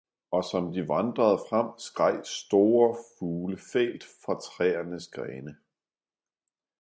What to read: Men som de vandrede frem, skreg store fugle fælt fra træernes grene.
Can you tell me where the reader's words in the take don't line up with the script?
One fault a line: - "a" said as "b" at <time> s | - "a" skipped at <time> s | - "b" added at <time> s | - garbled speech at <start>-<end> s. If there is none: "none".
- "Men" said as "Og" at 0.3 s